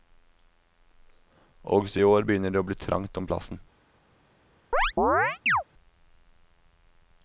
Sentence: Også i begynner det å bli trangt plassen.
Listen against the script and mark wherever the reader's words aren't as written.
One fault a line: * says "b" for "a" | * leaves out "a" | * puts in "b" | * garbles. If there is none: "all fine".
* puts in "år"
* puts in "om"